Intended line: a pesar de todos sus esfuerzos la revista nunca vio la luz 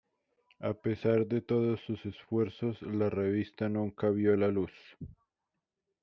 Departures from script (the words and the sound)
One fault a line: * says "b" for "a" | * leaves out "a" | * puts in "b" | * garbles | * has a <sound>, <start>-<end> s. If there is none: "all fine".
all fine